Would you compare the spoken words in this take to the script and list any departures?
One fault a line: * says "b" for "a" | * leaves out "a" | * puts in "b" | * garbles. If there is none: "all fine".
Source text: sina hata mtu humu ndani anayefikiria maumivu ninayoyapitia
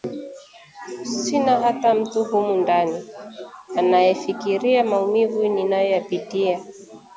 all fine